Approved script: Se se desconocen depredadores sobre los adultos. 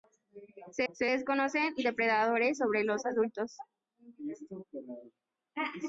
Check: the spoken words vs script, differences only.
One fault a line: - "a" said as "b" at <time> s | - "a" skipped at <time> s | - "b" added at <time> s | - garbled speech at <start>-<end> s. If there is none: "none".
none